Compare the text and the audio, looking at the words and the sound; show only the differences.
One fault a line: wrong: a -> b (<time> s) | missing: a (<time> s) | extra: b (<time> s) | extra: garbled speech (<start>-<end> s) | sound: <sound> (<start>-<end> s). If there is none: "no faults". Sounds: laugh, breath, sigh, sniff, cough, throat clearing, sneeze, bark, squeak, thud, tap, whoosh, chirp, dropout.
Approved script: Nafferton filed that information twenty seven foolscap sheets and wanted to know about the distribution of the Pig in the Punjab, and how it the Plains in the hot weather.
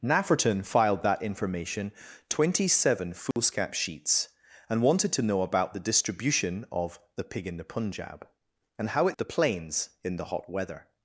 sound: dropout (3.3-3.4 s)